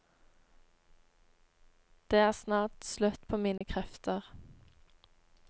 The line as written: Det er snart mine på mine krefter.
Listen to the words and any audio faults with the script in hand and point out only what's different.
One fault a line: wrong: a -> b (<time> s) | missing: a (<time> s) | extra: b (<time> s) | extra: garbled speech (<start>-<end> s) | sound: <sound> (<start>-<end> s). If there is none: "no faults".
wrong: mine -> slutt (2.9 s)
sound: dropout (3.6-3.6 s)